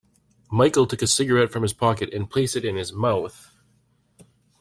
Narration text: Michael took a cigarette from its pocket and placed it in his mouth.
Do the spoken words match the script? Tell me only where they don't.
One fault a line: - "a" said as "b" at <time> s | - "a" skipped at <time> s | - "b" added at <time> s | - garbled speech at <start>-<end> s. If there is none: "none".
- "its" said as "his" at 1.6 s